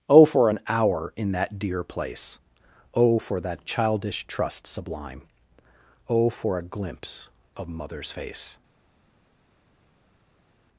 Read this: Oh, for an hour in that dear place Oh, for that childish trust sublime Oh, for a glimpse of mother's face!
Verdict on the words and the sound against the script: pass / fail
pass